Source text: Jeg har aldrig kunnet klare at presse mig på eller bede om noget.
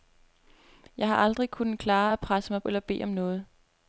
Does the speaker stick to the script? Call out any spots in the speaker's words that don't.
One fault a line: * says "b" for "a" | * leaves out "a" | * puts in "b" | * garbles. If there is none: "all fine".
* leaves out "på"